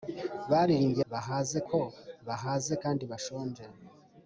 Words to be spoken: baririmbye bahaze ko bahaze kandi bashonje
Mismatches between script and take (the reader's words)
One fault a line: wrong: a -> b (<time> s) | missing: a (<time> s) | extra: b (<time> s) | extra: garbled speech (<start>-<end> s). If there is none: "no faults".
no faults